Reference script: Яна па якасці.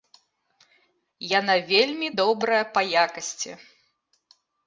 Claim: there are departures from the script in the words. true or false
true